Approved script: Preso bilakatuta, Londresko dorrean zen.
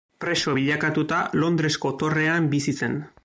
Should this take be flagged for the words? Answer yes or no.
yes